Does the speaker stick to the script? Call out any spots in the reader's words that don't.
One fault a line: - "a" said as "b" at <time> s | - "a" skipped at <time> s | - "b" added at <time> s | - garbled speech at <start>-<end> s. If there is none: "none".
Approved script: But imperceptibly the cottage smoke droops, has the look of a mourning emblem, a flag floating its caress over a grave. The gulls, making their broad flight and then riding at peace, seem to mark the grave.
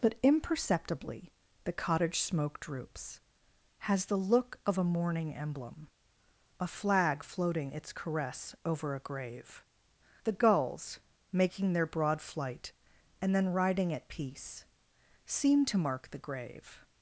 none